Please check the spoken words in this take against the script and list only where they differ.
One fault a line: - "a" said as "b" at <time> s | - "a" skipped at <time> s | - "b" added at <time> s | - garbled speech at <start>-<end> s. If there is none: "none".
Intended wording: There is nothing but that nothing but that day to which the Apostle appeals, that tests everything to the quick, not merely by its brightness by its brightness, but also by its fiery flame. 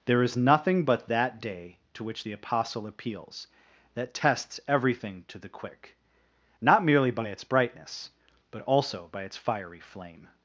- "nothing but that" skipped at 1.4 s
- "by its brightness" skipped at 8.1 s